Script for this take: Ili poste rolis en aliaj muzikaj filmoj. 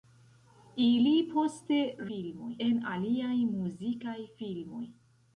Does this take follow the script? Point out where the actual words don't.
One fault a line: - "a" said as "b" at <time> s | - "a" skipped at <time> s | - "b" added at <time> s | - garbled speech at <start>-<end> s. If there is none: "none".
- "rolis" said as "filmoj" at 2.1 s